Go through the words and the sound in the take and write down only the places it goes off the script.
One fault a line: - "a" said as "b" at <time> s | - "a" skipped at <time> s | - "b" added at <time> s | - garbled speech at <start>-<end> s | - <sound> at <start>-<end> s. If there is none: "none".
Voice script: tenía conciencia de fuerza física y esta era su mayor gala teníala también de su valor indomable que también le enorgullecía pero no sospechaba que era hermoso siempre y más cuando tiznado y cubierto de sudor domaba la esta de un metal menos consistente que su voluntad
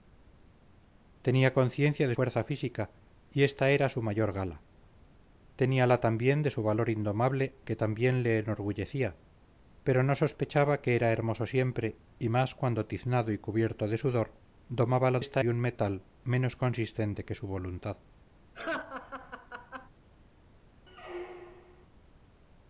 - laugh at 18.5-19.9 s
- squeak at 20.9-21.9 s